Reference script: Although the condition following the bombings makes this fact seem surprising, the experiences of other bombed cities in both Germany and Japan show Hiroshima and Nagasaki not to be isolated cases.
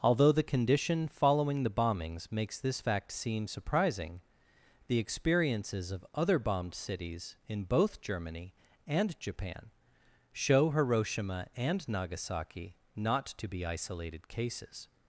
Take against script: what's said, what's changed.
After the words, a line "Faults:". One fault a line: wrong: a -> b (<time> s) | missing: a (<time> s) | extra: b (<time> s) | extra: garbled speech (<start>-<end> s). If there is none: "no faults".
Although the condition following the bombings makes this fact seem surprising, the experiences of other bombed cities in both Germany and Japan show Hiroshima and Nagasaki not to be isolated cases.
Faults:
no faults